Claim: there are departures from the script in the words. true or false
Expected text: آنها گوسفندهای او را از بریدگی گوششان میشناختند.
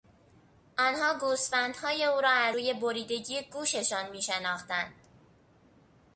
true